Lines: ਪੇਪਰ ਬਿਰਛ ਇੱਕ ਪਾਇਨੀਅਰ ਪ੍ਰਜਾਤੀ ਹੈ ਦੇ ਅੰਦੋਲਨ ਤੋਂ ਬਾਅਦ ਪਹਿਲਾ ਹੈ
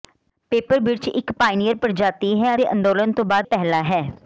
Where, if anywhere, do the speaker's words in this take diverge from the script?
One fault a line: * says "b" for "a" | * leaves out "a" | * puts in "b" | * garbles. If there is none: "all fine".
all fine